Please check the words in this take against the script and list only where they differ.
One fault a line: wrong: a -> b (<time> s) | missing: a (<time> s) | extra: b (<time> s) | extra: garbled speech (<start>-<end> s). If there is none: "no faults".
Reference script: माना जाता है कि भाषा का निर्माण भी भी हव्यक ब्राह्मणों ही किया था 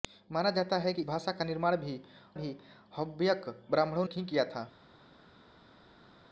no faults